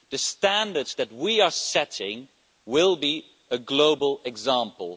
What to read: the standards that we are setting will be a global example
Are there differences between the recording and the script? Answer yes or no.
no